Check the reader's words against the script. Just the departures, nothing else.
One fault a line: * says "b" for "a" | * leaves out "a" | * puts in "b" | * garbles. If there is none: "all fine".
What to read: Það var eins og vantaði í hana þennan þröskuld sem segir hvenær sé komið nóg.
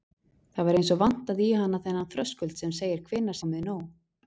* leaves out "sé"